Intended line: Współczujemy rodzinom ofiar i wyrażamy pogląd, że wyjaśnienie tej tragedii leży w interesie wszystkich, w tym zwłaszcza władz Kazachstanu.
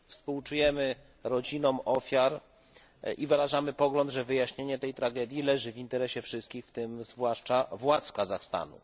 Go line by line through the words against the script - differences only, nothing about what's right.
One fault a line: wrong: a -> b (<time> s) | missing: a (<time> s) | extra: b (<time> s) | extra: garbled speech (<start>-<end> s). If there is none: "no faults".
no faults